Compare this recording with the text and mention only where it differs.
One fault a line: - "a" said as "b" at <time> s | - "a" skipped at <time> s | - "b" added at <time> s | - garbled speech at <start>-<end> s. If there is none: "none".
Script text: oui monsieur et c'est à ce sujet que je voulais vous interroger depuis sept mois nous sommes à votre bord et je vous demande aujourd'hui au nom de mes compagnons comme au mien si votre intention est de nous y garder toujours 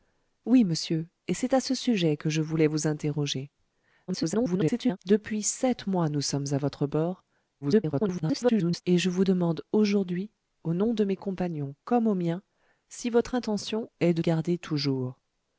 - garbled speech at 4.1-5.0 s
- garbled speech at 7.6-8.8 s
- "nous" skipped at 14.2 s